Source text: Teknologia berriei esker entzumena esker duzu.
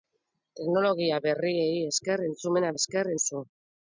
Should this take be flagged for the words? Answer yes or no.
no